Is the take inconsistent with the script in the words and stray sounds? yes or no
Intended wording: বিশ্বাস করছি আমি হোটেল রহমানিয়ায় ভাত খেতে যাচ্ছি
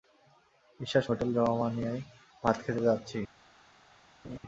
yes